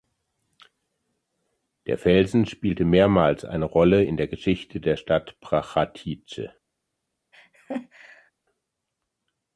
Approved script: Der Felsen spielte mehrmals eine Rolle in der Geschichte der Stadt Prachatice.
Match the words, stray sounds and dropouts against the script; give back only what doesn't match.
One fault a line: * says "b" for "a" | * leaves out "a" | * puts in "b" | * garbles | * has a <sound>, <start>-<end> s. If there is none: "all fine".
* has a laugh, 7.3-8.3 s